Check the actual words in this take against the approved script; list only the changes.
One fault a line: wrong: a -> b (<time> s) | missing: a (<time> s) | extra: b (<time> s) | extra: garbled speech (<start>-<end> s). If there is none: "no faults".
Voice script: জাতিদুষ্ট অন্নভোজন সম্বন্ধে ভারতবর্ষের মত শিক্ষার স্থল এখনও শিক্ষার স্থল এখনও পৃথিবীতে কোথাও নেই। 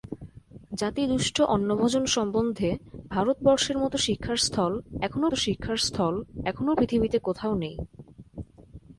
no faults